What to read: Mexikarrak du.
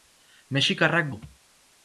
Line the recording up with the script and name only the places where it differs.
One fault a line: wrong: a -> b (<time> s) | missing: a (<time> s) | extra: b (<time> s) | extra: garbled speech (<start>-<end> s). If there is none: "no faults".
no faults